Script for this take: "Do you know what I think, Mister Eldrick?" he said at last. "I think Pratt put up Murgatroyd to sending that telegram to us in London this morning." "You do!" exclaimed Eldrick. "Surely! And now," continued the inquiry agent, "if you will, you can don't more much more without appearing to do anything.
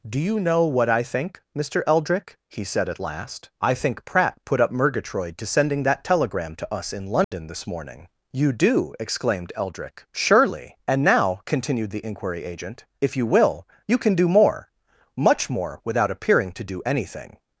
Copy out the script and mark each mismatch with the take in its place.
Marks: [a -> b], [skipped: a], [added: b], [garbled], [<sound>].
"Do you know what I think, Mister Eldrick?" he said at last. "I think Pratt put up Murgatroyd to sending that telegram to us in London [dropout] this morning." "You do!" exclaimed Eldrick. "Surely! And now," continued the inquiry agent, "if you will, you can [don't -> do] more much more without appearing to do anything.